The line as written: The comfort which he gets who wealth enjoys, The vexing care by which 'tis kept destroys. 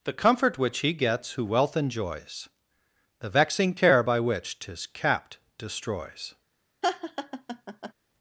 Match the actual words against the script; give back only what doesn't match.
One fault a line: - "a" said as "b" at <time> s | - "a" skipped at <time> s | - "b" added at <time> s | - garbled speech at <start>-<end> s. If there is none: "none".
- "kept" said as "capped" at 4.9 s